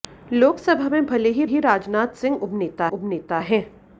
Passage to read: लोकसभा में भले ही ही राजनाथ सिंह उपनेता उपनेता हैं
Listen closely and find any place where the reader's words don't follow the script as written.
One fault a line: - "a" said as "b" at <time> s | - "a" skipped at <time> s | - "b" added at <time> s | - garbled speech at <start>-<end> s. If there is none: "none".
none